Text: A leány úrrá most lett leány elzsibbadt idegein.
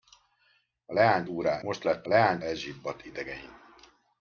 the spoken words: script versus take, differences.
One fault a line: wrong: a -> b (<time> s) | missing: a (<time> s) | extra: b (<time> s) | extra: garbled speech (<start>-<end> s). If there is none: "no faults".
no faults